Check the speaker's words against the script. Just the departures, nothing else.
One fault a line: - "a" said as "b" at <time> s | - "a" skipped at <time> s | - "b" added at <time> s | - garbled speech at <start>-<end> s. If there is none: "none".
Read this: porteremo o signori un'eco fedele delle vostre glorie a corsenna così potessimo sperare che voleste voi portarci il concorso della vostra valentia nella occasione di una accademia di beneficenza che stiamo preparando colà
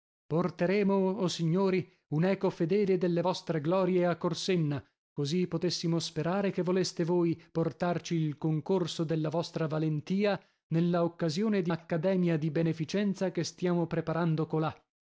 - "una" skipped at 11.7 s